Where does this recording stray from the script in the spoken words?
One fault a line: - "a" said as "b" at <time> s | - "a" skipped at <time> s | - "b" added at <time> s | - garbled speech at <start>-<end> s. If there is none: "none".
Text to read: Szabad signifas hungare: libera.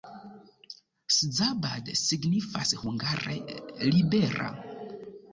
none